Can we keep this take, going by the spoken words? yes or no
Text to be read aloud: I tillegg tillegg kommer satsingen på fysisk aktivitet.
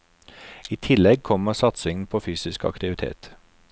no